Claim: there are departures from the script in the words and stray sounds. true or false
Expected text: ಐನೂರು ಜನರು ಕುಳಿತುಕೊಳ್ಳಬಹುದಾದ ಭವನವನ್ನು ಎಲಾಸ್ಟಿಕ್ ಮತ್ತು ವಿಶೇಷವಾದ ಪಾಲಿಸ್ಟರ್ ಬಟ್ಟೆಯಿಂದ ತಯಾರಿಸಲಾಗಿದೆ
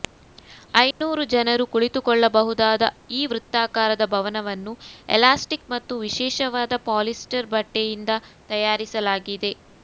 true